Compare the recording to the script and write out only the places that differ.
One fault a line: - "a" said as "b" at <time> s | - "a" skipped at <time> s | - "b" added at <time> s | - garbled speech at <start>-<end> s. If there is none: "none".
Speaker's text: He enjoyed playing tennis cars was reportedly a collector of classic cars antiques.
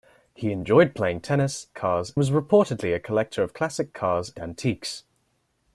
none